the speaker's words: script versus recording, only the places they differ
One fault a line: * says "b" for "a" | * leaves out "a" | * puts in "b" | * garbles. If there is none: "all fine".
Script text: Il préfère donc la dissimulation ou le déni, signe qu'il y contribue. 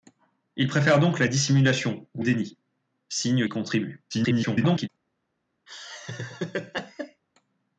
* leaves out "le"
* leaves out "qu'il"
* garbles